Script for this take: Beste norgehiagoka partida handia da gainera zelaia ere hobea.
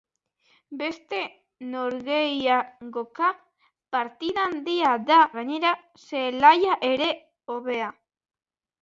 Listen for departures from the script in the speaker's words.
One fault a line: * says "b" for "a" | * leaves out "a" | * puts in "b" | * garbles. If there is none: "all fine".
all fine